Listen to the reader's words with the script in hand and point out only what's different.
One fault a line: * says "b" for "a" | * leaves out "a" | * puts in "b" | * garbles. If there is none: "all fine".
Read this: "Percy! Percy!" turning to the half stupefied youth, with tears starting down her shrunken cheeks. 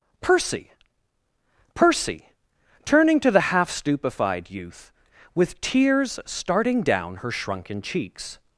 all fine